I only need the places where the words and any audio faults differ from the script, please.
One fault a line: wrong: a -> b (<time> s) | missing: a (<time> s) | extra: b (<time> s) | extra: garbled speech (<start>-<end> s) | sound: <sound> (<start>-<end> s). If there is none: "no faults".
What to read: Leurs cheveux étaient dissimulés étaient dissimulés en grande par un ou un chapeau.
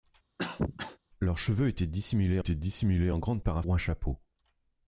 sound: cough (0.4-1.0 s)